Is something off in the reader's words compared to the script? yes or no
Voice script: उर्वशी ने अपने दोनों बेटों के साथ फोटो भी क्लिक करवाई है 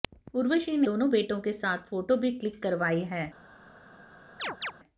yes